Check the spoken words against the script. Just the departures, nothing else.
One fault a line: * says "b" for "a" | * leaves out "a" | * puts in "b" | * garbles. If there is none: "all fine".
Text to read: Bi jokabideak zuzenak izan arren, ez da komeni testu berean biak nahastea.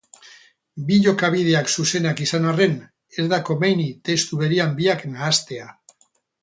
all fine